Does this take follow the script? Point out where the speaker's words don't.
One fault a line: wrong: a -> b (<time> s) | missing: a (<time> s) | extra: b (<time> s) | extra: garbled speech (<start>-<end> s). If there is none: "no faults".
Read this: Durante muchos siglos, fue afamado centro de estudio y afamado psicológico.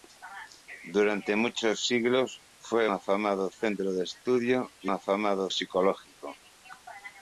no faults